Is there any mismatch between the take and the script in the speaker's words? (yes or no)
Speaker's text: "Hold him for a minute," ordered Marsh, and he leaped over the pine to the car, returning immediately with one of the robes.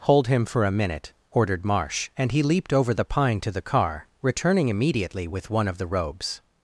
no